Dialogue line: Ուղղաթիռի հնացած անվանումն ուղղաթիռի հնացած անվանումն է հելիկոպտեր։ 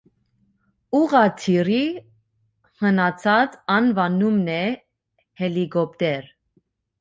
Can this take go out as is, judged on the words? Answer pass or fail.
fail